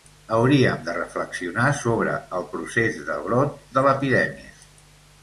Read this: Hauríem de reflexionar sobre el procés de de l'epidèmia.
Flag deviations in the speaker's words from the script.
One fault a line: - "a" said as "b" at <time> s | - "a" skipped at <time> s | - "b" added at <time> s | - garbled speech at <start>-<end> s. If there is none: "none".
- "brot" added at 3.3 s